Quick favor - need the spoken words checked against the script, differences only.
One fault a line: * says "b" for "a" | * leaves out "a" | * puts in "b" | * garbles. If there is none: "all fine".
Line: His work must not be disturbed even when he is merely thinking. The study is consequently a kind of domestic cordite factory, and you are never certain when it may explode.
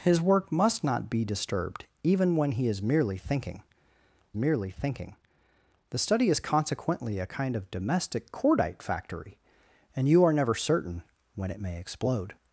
* puts in "merely thinking"